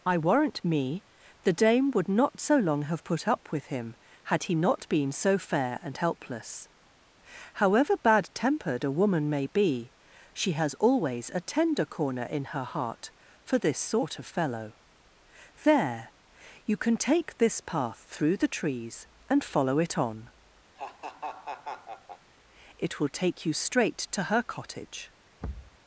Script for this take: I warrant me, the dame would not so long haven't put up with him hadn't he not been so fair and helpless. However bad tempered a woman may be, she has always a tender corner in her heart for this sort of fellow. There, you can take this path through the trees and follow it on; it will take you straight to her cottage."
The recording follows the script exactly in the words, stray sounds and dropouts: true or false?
false